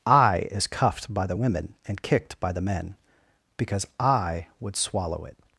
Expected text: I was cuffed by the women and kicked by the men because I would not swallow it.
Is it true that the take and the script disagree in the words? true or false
true